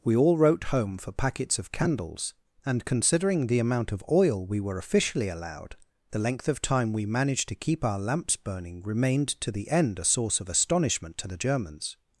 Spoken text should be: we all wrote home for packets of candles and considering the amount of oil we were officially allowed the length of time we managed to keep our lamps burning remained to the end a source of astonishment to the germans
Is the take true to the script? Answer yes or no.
yes